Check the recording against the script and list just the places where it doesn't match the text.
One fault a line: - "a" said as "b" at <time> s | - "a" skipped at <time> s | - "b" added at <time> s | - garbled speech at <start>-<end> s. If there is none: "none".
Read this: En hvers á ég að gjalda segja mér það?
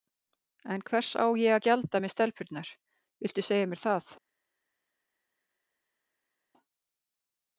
- "með stelpurnar viltu" added at 2.0 s